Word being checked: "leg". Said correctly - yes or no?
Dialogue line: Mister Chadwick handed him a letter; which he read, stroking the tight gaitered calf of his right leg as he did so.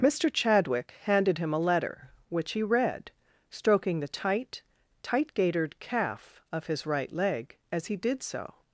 yes